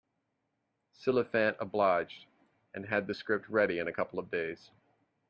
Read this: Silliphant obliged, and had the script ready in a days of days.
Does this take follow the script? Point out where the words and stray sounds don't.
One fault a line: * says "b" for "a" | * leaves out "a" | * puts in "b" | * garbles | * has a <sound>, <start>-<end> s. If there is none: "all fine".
* says "couple" for "days"